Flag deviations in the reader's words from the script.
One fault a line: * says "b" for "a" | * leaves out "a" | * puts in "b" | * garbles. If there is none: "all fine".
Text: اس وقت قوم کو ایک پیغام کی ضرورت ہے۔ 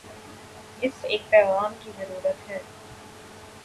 * leaves out "وقت قوم کو"